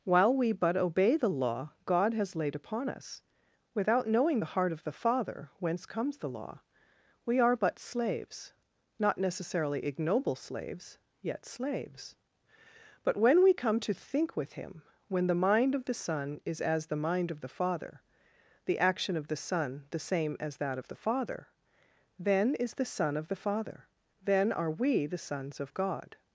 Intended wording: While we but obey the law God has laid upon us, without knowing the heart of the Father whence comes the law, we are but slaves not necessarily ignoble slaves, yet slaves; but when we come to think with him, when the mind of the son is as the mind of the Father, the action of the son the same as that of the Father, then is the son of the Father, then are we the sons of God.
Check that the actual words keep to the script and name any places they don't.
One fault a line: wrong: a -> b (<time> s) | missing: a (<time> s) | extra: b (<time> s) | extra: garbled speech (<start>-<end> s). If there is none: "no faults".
no faults